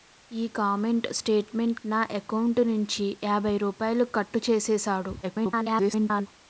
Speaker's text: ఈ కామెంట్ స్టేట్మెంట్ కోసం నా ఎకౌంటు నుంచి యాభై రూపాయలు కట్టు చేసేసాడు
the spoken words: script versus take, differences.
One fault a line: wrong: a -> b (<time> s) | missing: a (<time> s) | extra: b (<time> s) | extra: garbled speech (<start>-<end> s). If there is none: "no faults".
missing: కోసం (1.8 s)
extra: garbled speech (5.2-6.3 s)